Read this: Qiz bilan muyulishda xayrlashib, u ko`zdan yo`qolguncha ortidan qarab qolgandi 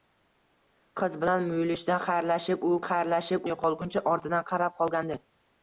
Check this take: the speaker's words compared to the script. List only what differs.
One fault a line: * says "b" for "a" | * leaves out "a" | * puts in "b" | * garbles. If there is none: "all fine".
* says "xayrlashib" for "ko`zdan"